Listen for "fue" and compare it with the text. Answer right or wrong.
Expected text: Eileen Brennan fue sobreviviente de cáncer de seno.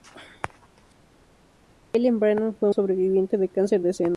right